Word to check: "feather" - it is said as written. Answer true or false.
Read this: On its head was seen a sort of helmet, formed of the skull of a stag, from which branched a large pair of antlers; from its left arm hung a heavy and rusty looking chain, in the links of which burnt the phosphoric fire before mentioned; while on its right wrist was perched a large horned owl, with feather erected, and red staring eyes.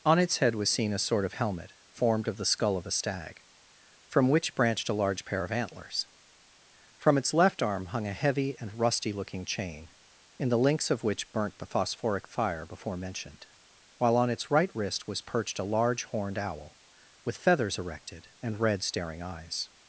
false